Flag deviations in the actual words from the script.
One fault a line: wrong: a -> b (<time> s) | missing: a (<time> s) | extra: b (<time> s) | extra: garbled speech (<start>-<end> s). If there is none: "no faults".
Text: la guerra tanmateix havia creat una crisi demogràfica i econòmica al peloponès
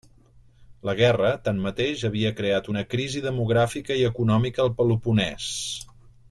no faults